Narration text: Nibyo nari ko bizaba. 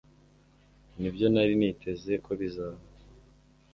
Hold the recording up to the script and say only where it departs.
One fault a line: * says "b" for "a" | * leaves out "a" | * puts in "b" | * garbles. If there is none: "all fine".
* puts in "niteze"